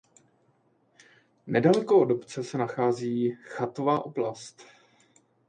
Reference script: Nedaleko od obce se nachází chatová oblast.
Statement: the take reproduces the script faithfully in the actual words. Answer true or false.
true